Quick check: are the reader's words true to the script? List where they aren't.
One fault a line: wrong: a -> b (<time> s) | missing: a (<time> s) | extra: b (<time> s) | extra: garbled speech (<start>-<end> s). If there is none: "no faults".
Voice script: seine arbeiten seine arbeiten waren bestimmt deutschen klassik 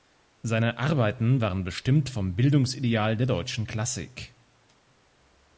wrong: seine arbeiten waren bestimmt -> waren bestimmt vom bildungsideal der (1.4 s)